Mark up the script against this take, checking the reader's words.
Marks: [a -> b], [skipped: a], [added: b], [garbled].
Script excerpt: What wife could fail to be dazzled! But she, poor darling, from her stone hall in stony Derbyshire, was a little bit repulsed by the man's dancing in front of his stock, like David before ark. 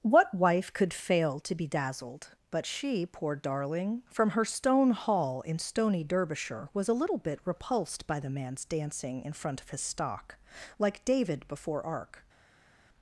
What wife could fail to be dazzled! But she, poor darling, from her stone hall in stony Derbyshire, was a little bit repulsed by the man's dancing in front of his stock, like David before ark.